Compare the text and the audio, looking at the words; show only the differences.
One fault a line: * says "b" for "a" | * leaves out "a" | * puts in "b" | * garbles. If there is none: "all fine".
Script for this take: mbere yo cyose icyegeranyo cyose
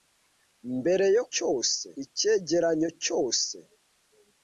all fine